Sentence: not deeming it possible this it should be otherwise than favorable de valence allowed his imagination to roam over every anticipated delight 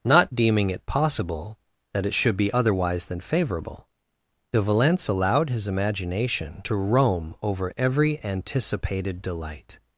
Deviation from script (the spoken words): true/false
true